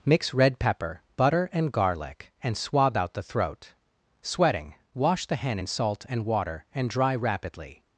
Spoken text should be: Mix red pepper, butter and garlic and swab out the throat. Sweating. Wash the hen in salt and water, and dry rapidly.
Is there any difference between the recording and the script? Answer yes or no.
no